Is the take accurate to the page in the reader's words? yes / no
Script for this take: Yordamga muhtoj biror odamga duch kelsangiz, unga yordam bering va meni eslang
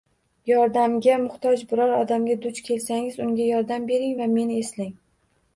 yes